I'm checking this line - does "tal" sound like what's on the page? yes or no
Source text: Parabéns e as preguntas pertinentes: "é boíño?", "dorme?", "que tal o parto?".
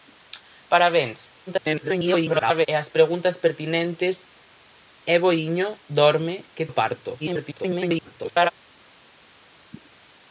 no